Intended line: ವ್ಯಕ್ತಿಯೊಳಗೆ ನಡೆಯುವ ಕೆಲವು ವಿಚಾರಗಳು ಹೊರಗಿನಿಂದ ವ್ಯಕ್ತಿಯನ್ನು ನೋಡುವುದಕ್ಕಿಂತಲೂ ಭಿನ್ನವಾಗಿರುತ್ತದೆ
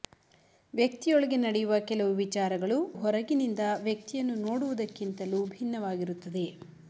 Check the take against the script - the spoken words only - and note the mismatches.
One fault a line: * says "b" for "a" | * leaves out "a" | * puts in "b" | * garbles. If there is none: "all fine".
all fine